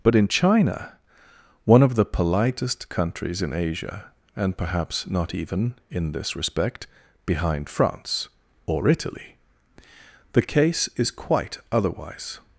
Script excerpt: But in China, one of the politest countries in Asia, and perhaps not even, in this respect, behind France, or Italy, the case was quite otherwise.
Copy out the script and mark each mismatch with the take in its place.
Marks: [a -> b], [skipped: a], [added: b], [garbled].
But in China, one of the politest countries in Asia, and perhaps not even, in this respect, behind France, or Italy, the case [was -> is] quite otherwise.